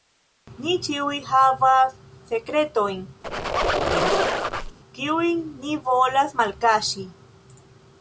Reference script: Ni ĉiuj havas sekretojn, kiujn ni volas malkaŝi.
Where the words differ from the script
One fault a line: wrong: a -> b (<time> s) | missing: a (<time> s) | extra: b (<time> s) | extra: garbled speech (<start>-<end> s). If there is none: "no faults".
no faults